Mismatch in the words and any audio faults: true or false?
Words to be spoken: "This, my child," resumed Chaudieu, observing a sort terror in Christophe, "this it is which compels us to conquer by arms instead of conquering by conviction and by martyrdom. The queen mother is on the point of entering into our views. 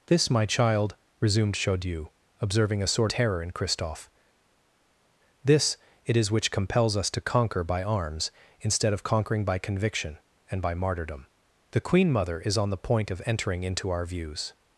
false